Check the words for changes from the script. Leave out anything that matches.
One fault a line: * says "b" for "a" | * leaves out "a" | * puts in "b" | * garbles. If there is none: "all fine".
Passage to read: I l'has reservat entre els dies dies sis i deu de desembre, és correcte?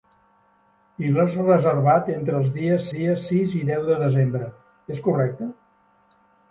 all fine